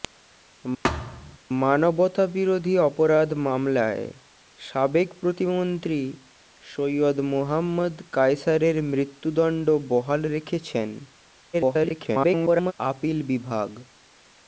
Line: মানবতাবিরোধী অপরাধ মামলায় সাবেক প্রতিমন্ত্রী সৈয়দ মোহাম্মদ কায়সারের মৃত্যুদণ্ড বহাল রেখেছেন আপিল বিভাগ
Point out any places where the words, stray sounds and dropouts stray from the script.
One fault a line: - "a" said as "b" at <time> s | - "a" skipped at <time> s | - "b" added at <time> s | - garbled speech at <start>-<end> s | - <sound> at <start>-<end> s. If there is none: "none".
- thud at 0.8-1.4 s
- garbled speech at 11.5-12.7 s